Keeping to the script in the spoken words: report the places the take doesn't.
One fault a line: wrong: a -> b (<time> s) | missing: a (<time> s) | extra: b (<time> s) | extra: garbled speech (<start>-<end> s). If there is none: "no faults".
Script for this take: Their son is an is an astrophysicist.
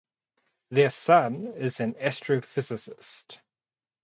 missing: is an (1.9 s)